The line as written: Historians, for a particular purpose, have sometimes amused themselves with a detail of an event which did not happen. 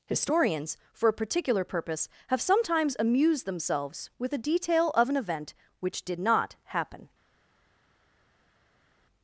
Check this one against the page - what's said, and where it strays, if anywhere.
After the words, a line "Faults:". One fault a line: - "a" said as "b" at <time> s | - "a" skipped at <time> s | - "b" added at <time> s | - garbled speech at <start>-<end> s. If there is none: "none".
Historians, for a particular purpose, have sometimes amused themselves with a detail of an event which did not happen.
Faults:
none